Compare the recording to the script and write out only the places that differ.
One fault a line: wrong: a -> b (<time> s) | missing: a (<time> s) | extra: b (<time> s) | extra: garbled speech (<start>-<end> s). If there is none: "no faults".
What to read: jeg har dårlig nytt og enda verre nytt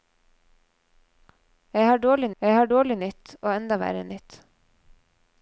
extra: jeg har dårlig (2.4 s)